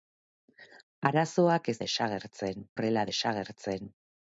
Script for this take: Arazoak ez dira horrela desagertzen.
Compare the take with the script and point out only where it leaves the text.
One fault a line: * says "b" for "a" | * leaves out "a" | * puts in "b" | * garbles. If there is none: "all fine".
* says "desagertzen" for "dira"